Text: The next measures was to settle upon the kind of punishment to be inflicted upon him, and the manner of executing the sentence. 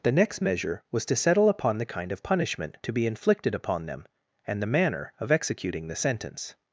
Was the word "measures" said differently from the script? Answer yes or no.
yes